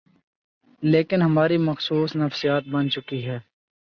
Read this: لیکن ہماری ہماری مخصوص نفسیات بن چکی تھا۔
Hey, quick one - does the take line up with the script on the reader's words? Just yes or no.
no